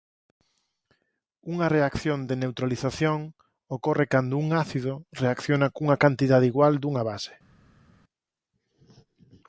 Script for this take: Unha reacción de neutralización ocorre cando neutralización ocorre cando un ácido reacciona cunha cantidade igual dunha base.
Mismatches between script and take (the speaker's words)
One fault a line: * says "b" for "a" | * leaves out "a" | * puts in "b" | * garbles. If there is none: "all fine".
* leaves out "neutralización ocorre cando"